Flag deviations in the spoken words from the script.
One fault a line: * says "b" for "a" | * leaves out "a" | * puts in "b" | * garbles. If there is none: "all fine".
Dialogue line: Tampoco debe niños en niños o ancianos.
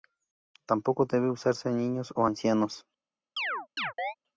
* says "usarse" for "niños"